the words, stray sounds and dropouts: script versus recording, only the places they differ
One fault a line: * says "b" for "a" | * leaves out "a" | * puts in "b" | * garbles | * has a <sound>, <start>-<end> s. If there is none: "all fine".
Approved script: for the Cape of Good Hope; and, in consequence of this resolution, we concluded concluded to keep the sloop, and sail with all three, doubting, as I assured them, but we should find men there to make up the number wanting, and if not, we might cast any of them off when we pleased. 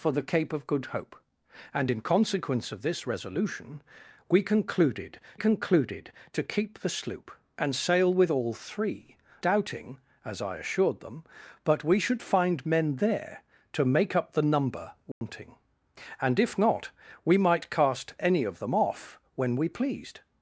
* has a dropout, 15.1-15.2 s